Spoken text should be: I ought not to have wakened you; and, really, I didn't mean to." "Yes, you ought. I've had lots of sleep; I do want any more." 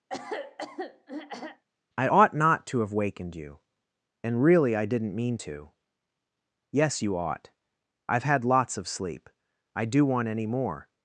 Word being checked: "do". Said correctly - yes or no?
yes